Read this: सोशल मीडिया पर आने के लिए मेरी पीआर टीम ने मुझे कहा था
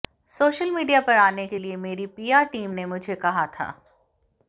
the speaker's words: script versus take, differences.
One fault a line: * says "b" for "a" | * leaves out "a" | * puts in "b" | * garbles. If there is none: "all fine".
all fine